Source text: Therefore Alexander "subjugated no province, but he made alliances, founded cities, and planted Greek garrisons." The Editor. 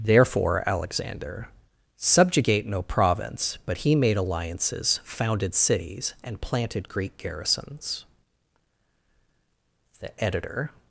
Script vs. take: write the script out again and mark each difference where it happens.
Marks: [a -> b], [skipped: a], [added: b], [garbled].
Therefore Alexander ["subjugated -> subjugate] no province, but he made alliances, founded cities, and planted Greek garrisons." The Editor.